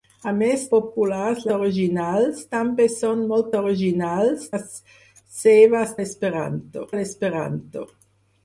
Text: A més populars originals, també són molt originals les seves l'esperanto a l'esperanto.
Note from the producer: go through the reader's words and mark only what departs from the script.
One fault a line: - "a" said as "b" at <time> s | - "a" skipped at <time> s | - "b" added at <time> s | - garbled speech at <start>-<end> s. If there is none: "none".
none